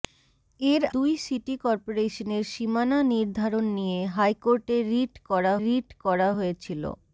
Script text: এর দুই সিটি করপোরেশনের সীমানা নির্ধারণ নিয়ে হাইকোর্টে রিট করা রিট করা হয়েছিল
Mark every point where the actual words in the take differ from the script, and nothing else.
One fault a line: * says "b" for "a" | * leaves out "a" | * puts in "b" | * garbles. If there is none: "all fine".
all fine